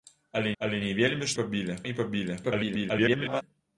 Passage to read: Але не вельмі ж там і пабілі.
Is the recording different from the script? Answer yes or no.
yes